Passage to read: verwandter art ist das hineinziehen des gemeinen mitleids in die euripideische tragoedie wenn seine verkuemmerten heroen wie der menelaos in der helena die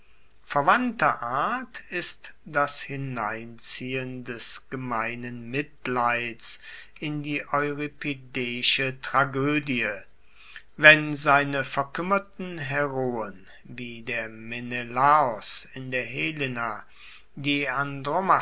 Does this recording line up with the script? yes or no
yes